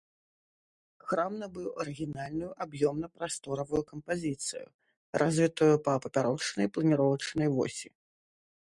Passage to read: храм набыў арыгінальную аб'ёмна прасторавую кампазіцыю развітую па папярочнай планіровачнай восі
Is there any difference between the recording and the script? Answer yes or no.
no